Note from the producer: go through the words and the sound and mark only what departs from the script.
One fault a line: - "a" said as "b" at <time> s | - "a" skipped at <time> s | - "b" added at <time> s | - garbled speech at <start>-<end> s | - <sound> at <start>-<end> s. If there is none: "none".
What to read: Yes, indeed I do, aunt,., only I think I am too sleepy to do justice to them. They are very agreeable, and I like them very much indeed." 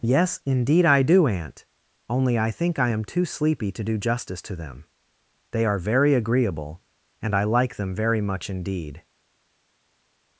none